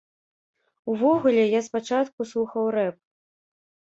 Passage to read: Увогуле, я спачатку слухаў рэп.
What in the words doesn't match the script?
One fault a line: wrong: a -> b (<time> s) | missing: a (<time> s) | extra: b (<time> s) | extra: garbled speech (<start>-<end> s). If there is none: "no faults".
no faults